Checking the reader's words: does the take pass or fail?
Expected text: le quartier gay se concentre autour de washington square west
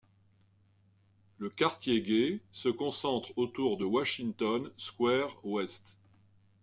pass